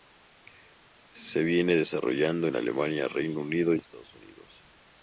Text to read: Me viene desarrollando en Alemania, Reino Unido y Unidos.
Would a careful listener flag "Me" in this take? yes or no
yes